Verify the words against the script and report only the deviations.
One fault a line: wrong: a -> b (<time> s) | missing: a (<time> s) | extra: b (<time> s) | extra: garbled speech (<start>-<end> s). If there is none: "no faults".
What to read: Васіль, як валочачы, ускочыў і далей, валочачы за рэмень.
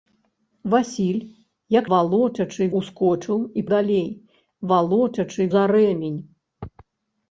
no faults